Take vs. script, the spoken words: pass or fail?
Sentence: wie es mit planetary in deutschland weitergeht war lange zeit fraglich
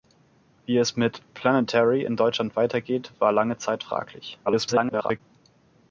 fail